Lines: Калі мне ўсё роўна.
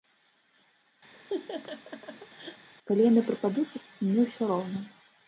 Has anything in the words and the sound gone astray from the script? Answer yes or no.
yes